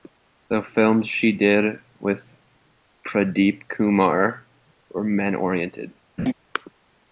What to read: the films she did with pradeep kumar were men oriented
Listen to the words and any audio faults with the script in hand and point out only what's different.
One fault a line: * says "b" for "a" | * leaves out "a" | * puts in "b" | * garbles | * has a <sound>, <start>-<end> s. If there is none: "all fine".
* has a laugh, 6.2-6.3 s